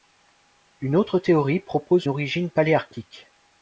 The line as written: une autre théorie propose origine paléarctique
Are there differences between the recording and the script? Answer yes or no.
no